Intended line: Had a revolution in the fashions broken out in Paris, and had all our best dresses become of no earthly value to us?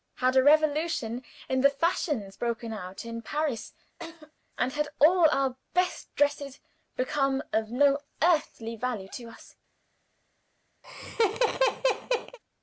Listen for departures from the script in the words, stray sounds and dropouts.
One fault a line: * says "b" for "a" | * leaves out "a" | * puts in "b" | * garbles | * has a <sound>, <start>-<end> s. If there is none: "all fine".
* has a laugh, 4.0-4.3 s
* has a laugh, 10.8-12.4 s